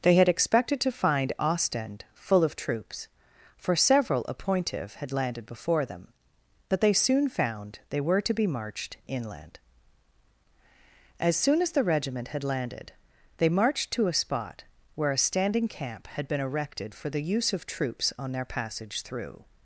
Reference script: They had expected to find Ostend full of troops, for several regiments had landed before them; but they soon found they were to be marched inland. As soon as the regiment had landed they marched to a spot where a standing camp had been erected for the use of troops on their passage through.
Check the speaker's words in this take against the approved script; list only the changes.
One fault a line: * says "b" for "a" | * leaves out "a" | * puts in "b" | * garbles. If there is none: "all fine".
* says "appointive" for "regiments"